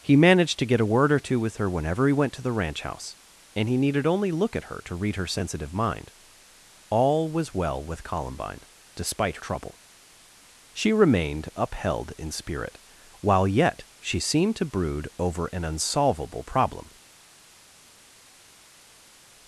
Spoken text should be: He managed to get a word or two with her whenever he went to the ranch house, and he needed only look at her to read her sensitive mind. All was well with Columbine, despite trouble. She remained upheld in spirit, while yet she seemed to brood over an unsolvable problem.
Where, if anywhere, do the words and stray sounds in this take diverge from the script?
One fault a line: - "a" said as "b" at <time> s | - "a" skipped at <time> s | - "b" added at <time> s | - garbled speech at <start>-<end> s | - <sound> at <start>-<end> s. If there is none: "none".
none